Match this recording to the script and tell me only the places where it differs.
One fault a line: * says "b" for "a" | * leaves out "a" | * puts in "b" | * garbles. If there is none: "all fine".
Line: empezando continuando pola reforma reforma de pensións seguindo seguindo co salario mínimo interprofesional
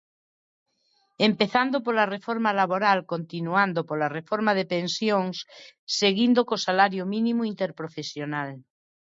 * puts in "pola reforma laboral"
* leaves out "reforma"
* leaves out "seguindo"